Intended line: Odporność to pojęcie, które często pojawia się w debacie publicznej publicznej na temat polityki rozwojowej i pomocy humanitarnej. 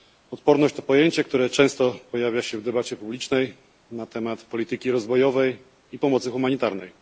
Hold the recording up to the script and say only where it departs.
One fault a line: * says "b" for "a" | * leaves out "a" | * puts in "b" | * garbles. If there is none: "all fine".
* leaves out "publicznej"